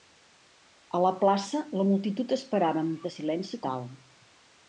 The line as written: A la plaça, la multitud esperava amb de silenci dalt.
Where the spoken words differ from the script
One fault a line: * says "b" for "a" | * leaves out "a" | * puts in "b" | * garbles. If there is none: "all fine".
all fine